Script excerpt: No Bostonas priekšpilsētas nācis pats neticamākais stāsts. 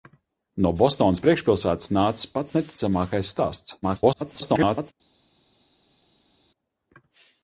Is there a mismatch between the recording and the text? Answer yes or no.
yes